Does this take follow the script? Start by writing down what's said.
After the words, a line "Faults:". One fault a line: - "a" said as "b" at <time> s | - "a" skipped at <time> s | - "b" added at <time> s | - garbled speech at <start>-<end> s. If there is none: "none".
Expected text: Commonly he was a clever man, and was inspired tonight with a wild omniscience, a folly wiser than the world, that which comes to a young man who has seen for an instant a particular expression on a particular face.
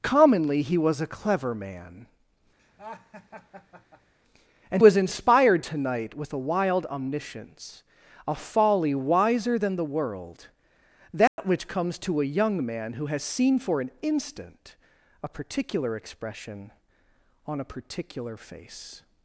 Commonly he was a clever man, and was inspired tonight with a wild omniscience, a folly wiser than the world, that which comes to a young man who has seen for an instant a particular expression on a particular face.
Faults:
none